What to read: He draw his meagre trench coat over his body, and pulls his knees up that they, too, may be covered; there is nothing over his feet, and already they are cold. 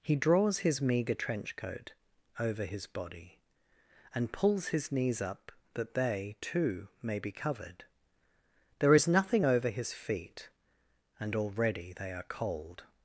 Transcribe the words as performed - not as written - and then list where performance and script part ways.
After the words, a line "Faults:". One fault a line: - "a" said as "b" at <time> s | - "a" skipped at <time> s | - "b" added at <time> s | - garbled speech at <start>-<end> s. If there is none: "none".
He draws his meagre trench coat over his body, and pulls his knees up that they, too, may be covered; there is nothing over his feet, and already they are cold.
Faults:
- "draw" said as "draws" at 0.1 s